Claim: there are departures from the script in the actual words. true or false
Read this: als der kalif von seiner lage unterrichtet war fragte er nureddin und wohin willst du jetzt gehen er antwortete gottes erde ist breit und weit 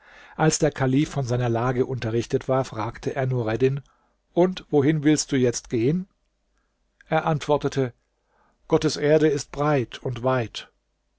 false